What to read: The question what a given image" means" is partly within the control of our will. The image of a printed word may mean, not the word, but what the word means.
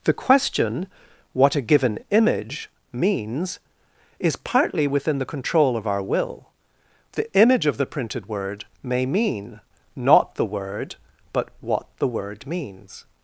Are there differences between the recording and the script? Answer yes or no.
yes